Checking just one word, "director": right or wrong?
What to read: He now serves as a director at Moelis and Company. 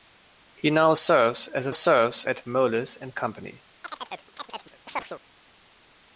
wrong